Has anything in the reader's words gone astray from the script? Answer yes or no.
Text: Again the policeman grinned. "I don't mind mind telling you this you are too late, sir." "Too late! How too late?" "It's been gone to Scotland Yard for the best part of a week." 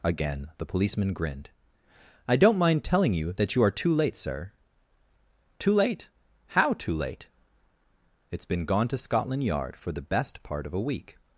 yes